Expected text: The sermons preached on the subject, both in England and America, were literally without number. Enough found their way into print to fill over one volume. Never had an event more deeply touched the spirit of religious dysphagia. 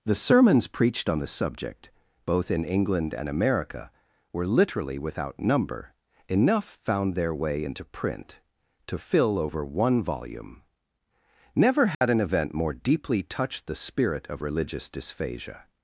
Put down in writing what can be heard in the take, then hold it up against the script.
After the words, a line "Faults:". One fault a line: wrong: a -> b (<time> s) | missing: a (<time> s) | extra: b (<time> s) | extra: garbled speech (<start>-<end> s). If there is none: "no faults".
The sermons preached on the subject, both in England and America, were literally without number. Enough found their way into print to fill over one volume. Never had an event more deeply touched the spirit of religious dysphagia.
Faults:
no faults